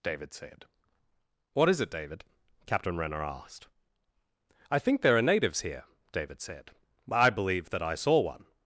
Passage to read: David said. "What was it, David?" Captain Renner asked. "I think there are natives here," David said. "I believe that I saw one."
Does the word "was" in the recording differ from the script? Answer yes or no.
yes